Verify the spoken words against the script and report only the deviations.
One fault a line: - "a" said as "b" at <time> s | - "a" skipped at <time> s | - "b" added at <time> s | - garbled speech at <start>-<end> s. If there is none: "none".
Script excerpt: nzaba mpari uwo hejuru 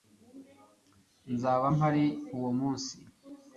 - "hejuru" said as "munsi" at 2.6 s